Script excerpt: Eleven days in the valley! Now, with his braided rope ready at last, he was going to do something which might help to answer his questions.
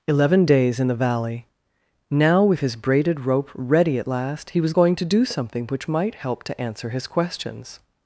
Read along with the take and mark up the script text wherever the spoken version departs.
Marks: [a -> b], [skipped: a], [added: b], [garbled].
Eleven days in the valley! Now, with his braided rope ready at last, he was going to do something which might help to answer his questions.